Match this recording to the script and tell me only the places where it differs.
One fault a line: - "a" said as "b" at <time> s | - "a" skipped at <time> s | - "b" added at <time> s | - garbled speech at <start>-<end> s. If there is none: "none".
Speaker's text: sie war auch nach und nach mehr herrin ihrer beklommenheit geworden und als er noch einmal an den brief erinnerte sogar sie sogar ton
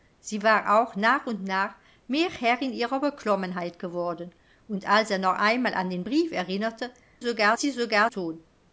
none